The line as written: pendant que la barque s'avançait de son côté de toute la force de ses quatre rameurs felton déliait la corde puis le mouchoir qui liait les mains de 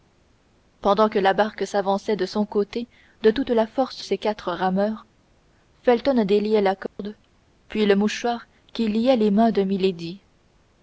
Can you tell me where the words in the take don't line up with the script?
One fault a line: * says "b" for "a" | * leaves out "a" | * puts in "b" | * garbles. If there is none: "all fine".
* leaves out "de"